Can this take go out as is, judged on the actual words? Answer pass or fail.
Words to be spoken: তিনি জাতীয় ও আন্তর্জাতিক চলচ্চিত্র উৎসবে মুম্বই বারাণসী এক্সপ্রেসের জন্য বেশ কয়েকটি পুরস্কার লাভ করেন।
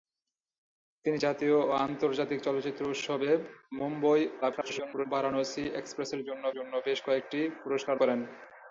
fail